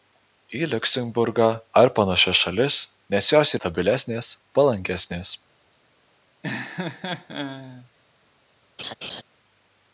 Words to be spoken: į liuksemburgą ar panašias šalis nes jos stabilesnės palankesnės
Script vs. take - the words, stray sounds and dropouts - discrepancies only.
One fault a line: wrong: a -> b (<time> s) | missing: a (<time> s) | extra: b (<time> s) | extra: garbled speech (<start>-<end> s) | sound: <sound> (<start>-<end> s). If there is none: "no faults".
sound: laugh (6.4-7.9 s)
sound: laugh (8.8-9.2 s)